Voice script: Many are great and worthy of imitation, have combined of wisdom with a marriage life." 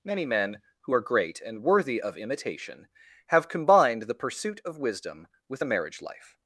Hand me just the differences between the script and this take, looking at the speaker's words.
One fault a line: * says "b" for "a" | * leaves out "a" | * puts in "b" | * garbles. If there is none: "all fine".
* puts in "men who"
* puts in "the pursuit"